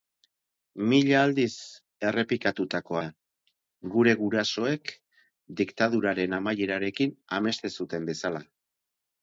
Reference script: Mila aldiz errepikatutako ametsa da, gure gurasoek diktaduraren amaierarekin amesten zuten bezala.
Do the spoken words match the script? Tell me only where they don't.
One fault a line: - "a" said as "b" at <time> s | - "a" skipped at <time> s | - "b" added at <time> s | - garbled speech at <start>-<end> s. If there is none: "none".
- "ametsa" skipped at 3.0 s